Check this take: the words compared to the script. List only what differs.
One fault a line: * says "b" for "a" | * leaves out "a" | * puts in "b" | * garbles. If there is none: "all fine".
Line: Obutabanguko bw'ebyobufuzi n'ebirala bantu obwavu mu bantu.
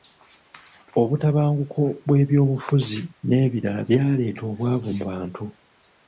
* says "byaleeta" for "bantu"